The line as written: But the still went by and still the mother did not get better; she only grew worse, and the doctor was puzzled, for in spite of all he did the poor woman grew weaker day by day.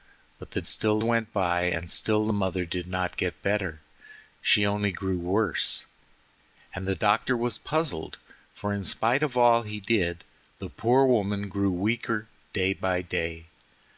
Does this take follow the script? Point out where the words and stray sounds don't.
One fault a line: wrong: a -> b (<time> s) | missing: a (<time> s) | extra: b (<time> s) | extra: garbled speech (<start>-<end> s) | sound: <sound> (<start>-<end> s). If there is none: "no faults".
no faults